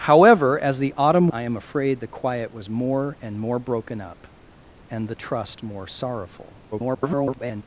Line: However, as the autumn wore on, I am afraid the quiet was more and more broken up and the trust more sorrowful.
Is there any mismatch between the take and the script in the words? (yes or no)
yes